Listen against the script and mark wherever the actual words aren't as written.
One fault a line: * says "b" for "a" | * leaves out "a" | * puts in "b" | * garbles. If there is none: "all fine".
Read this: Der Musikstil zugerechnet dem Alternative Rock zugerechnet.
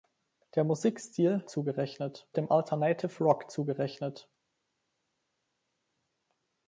all fine